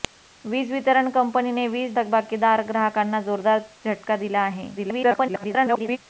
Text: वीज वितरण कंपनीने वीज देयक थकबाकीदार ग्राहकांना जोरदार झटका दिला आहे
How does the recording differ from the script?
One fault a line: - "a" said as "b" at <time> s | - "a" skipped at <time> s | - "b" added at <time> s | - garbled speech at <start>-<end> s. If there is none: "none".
- "देयक" skipped at 1.9 s
- garbled speech at 4.8-6.0 s